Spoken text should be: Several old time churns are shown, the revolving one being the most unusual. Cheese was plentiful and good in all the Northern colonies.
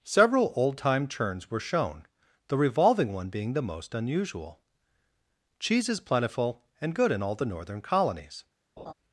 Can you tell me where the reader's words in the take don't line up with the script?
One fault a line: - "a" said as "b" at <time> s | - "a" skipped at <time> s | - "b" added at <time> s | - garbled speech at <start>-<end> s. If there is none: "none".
- "are" said as "were" at 1.5 s
- "was" said as "is" at 5.9 s